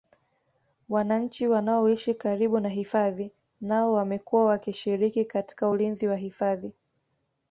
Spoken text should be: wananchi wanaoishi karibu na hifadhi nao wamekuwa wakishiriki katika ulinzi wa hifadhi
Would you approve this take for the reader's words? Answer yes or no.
yes